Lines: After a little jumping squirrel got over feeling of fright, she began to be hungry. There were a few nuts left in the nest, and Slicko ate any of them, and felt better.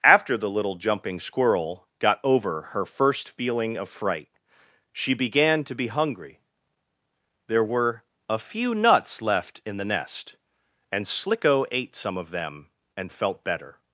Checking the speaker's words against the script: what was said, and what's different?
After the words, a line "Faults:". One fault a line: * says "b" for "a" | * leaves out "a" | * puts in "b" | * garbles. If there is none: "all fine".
After the little jumping squirrel got over her first feeling of fright, she began to be hungry. There were a few nuts left in the nest, and Slicko ate some of them, and felt better.
Faults:
* says "the" for "a"
* puts in "her first"
* says "some" for "any"